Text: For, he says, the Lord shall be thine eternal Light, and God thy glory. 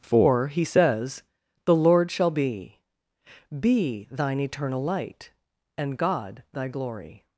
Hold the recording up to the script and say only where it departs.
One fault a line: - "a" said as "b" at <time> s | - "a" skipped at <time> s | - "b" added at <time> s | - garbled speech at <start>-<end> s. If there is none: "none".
- "be" added at 3.6 s